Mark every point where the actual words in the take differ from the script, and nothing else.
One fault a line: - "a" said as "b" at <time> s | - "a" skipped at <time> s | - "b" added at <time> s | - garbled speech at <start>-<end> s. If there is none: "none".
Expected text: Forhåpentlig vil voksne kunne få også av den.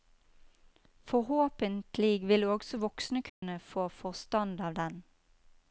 - "også" added at 2.4 s
- "også" said as "forstand" at 3.9 s